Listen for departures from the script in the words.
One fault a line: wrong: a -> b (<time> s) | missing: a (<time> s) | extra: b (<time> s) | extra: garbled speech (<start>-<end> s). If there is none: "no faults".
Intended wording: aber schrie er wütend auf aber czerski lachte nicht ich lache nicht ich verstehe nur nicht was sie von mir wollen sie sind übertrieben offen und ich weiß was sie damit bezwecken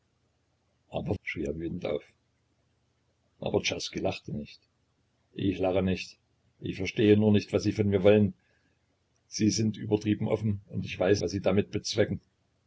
no faults